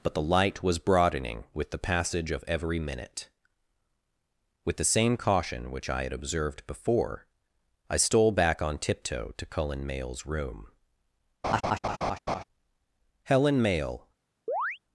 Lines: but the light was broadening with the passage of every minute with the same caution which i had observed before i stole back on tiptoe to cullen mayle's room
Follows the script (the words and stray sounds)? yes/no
no